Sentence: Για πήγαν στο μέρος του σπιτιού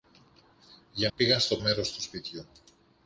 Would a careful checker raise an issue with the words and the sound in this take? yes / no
no